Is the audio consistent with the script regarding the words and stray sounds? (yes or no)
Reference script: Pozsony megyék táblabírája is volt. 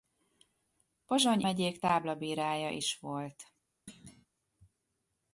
no